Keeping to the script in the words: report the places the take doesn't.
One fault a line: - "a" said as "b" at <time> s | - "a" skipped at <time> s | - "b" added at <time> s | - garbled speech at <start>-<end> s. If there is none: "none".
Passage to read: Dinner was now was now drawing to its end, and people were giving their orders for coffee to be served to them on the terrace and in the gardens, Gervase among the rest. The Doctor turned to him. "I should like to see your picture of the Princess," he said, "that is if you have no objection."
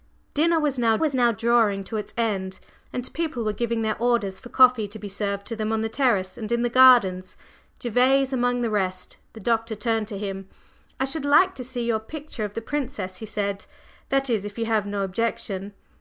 none